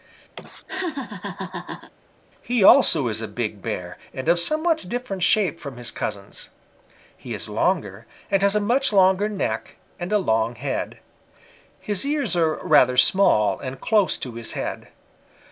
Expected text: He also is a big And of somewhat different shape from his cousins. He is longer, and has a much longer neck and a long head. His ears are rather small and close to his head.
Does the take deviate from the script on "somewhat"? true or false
false